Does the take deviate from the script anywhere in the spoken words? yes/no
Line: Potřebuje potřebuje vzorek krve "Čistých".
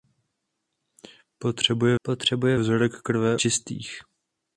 no